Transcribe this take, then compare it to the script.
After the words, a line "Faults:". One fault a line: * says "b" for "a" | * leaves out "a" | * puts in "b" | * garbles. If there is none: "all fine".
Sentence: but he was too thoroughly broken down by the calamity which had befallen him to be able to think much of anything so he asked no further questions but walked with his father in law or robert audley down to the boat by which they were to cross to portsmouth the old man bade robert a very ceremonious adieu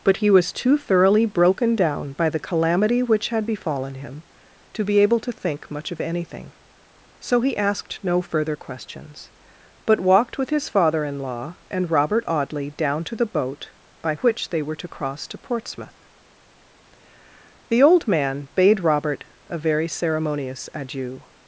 but he was too thoroughly broken down by the calamity which had befallen him to be able to think much of anything so he asked no further questions but walked with his father in law and robert audley down to the boat by which they were to cross to portsmouth the old man bade robert a very ceremonious adieu
Faults:
* says "and" for "or"